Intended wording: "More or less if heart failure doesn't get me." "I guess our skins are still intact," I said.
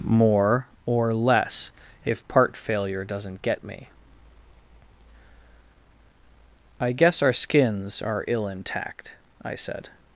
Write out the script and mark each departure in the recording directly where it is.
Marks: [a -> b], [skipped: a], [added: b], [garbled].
"More or less if [heart -> part] failure doesn't get me." "I guess our skins are [still -> ill] intact," I said.